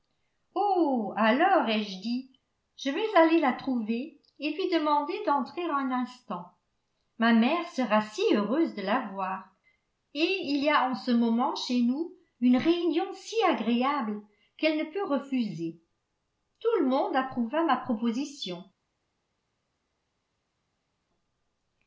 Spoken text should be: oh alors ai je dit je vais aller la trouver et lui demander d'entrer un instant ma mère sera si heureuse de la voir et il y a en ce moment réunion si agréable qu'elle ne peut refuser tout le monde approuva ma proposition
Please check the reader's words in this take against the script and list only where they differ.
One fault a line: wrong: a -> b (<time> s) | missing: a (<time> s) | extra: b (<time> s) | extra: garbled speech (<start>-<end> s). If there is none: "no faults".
extra: chez nous une (11.5 s)